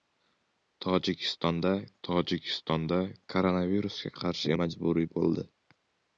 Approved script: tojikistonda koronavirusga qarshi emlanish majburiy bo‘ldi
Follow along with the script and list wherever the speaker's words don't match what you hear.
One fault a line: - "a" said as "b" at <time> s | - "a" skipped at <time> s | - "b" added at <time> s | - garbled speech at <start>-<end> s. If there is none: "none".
- "tojikistonda" added at 2.1 s
- "emlanish" skipped at 4.5 s